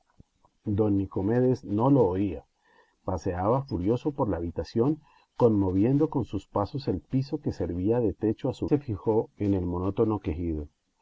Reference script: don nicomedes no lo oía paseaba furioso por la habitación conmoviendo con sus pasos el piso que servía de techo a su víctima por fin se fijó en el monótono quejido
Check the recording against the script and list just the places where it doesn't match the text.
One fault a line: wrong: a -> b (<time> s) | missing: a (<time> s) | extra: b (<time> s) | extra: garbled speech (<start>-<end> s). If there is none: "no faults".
missing: víctima por fin (8.7 s)